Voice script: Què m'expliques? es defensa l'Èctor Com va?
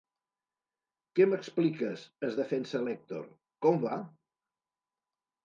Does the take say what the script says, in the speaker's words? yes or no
yes